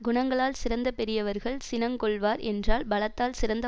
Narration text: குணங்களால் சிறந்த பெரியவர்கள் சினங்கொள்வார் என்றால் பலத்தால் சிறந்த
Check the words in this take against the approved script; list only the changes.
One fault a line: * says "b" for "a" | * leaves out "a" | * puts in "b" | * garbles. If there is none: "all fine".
all fine